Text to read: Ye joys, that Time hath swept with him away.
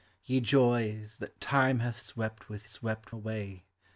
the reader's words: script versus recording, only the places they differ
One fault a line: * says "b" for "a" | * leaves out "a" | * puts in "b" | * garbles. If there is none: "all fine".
* says "swept" for "him"